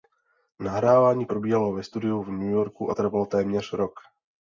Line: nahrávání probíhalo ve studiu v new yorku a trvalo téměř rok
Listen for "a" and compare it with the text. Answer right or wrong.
right